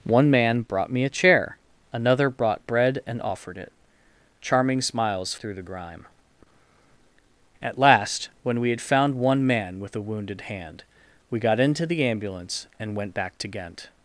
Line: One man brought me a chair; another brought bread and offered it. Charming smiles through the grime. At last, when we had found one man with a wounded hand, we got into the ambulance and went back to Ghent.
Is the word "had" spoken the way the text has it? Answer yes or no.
yes